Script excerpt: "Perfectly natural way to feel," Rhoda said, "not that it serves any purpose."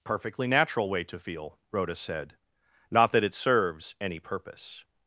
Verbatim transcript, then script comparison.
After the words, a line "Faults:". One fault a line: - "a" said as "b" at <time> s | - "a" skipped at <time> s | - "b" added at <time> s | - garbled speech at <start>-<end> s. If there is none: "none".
"Perfectly natural way to feel," Rhoda said, "not that it serves any purpose."
Faults:
none